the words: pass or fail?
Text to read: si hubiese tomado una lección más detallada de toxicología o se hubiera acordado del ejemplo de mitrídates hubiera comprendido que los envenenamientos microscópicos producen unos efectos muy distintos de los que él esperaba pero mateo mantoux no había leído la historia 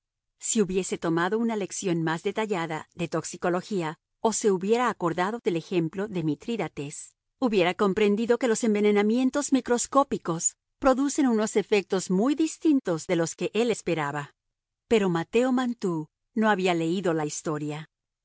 pass